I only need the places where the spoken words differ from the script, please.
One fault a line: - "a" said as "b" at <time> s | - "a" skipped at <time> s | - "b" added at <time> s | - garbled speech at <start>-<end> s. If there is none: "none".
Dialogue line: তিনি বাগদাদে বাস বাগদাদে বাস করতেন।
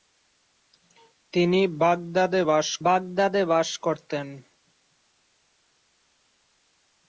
none